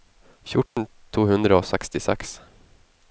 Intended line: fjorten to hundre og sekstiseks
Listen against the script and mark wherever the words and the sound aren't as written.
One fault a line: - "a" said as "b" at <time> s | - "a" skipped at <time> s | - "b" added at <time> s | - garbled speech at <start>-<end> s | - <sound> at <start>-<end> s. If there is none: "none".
- dropout at 0.7-0.8 s